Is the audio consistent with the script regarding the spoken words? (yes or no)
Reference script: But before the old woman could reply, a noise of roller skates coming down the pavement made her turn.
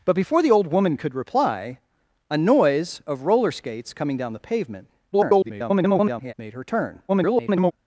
no